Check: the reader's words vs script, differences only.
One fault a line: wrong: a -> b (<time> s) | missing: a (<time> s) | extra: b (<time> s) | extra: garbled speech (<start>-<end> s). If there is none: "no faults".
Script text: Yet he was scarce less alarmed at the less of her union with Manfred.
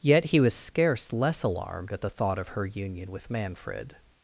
wrong: less -> thought (2.1 s)